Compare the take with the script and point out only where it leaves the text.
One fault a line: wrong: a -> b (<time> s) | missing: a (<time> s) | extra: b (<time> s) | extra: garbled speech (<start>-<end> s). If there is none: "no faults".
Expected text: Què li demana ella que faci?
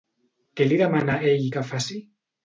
wrong: ella -> ell (1.3 s)